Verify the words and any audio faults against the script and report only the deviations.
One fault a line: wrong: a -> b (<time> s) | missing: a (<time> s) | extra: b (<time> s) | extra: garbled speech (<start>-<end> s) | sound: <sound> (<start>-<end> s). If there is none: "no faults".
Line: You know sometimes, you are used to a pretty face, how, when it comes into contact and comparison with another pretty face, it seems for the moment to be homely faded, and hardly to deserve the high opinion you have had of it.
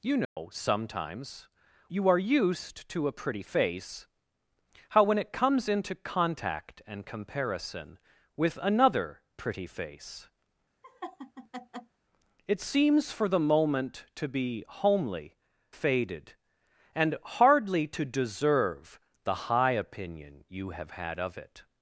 sound: dropout (0.2-0.4 s)
sound: laugh (10.8-12.0 s)